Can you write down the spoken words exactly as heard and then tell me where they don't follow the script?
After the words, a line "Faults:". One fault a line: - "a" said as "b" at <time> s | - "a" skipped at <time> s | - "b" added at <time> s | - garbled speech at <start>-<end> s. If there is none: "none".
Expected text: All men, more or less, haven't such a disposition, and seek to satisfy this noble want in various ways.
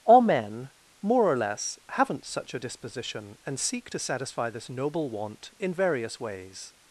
All men, more or less, haven't such a disposition, and seek to satisfy this noble want in various ways.
Faults:
none